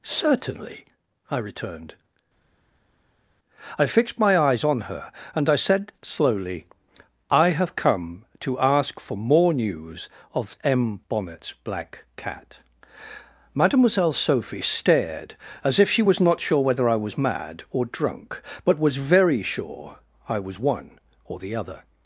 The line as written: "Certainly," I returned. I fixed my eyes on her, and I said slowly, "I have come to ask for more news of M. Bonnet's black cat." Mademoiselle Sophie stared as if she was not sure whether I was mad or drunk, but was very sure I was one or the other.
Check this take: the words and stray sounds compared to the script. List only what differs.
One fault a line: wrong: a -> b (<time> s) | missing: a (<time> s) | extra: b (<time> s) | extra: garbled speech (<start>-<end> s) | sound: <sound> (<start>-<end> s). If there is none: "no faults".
no faults